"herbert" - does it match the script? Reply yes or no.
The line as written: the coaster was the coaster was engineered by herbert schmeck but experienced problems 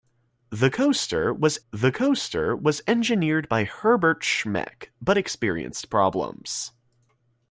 yes